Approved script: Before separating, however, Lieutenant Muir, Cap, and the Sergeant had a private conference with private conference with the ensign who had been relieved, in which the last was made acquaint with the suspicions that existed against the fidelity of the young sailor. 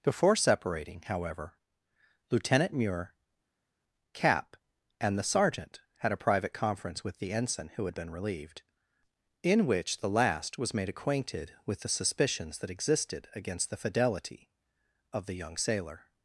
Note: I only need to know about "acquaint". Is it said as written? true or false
false